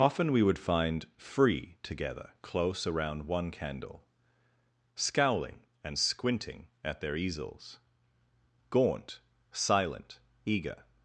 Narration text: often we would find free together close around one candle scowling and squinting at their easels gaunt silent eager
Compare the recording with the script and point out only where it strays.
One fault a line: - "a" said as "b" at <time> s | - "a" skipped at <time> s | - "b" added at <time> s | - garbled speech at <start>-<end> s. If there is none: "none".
none